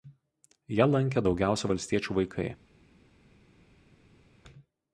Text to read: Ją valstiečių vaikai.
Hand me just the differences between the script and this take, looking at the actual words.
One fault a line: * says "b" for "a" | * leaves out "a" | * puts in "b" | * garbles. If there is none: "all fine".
* puts in "lankė daugiausia"